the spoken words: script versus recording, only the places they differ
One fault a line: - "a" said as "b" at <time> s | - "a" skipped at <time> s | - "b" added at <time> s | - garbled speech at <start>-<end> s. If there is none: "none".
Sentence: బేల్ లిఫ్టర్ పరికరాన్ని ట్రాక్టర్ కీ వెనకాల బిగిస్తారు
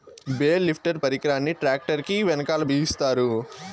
none